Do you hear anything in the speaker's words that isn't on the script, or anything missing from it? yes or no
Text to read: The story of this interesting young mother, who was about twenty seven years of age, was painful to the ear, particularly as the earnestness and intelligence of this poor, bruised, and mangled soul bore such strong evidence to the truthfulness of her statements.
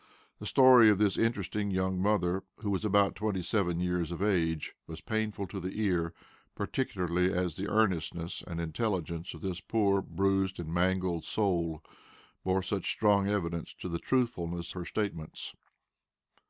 yes